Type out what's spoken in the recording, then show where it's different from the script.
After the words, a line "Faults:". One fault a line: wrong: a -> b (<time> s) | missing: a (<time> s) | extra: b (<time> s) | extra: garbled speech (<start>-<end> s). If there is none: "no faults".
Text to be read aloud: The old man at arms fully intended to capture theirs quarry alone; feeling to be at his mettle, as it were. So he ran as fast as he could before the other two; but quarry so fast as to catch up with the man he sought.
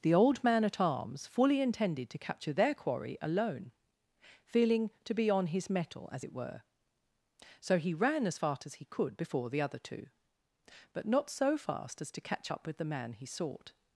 The old man at arms fully intended to capture their quarry alone; feeling to be on his mettle, as it were. So he ran as fast as he could before the other two; but not so fast as to catch up with the man he sought.
Faults:
wrong: theirs -> their (2.5 s)
wrong: at -> on (5.3 s)
wrong: quarry -> not (11.1 s)